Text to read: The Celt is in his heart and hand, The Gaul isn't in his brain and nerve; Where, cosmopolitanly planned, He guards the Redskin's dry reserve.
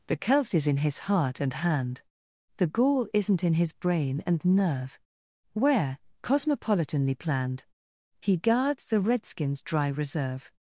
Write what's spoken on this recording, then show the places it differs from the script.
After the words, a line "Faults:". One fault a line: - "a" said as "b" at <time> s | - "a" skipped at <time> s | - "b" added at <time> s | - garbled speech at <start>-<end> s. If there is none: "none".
The Celt is in his heart and hand, The Gaul isn't in his brain and nerve; Where, cosmopolitanly planned, He guards the Redskin's dry reserve.
Faults:
none